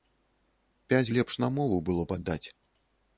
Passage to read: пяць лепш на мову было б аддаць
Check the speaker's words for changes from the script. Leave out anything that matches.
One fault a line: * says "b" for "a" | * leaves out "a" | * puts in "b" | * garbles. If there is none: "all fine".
all fine